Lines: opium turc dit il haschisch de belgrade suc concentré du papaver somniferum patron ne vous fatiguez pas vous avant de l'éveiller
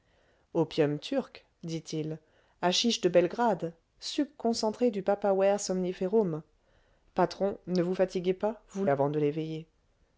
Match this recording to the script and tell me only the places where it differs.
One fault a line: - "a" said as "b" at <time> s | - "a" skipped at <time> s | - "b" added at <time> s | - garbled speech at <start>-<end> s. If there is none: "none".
none